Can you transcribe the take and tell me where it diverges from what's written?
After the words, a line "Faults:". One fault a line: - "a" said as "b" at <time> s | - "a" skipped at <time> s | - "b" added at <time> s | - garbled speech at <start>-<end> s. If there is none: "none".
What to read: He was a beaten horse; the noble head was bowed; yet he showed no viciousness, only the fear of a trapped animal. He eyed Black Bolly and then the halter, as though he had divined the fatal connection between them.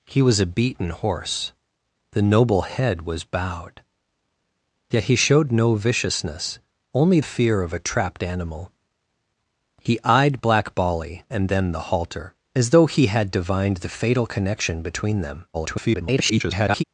He was a beaten horse; the noble head was bowed; yet he showed no viciousness, only fear of a trapped animal. He eyed Black Bolly and then the halter, as though he had divined the fatal connection between them. [garbled]
Faults:
- "the" skipped at 7.2 s
- garbled speech at 15.5-16.8 s